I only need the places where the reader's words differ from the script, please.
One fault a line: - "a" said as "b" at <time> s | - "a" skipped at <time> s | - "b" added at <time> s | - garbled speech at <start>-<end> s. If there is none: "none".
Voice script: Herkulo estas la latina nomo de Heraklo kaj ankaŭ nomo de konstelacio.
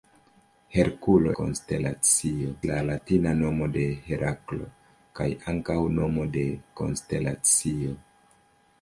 - "estas" said as "konstelacio" at 1.4 s